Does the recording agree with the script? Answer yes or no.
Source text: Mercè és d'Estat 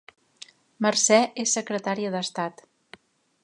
no